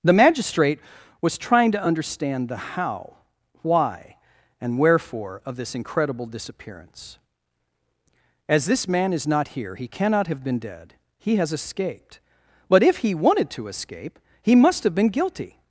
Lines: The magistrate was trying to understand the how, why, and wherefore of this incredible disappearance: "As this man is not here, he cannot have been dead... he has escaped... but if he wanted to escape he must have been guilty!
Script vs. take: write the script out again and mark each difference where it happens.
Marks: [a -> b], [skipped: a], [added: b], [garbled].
The magistrate was trying to understand the how, why, and wherefore of this incredible disappearance: "As this man is not here, he cannot have been dead... he has escaped... but if he wanted to escape he must have been guilty!